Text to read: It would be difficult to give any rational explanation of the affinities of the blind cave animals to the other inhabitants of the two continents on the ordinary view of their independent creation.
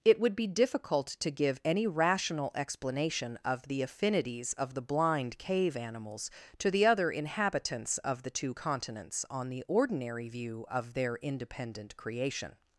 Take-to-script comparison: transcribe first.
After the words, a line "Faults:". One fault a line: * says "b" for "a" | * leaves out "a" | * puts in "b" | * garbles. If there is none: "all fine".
It would be difficult to give any rational explanation of the affinities of the blind cave animals to the other inhabitants of the two continents on the ordinary view of their independent creation.
Faults:
all fine